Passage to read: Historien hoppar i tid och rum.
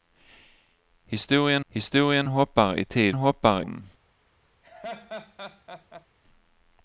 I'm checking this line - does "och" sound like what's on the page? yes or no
no